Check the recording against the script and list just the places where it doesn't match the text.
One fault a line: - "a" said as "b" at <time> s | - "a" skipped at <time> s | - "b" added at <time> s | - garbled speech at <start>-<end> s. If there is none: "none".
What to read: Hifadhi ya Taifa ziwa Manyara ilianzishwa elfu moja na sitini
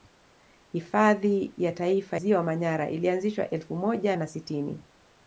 none